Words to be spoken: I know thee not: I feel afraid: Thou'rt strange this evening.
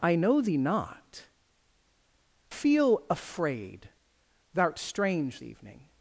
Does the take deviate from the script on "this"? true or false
true